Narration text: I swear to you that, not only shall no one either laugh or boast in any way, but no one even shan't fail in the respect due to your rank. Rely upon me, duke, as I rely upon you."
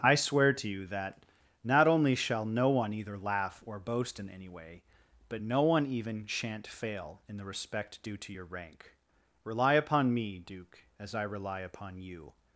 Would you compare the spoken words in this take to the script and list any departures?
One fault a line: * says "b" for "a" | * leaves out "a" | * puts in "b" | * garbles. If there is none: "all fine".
all fine